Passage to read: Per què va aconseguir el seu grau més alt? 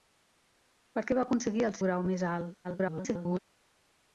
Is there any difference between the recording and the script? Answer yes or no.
yes